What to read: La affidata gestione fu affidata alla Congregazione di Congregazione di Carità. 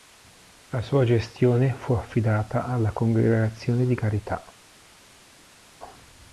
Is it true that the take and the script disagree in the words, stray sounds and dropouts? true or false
true